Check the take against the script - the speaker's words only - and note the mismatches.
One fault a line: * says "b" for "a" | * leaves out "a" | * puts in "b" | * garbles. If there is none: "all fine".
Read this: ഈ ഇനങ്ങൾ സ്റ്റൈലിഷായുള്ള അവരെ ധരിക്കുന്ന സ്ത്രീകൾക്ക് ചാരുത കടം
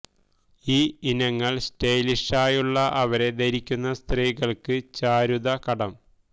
all fine